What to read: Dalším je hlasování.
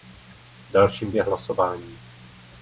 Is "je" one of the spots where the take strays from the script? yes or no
no